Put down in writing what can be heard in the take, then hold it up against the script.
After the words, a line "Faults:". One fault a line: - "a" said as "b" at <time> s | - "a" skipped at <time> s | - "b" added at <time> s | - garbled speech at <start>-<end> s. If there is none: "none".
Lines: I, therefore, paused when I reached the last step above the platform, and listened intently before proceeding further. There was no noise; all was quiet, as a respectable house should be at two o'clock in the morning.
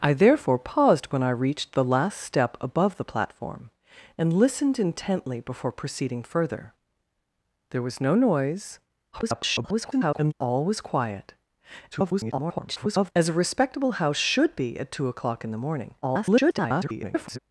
I, therefore, paused when I reached the last step above the platform, and listened intently before proceeding further. There was no noise; [garbled] all was quiet, [garbled] as a respectable house should be at two o'clock in the morning. [garbled]
Faults:
- garbled speech at 9.1-10.3 s
- garbled speech at 11.9-13.1 s
- garbled speech at 16.0-17.4 s